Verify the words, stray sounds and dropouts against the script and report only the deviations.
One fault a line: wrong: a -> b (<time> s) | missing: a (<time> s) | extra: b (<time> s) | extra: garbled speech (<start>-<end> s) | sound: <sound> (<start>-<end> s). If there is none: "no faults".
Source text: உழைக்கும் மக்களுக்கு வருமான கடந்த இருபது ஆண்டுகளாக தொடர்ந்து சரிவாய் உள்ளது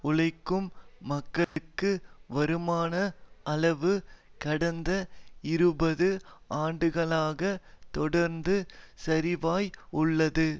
sound: dropout (1.4-1.6 s)
extra: அளவு (3.5 s)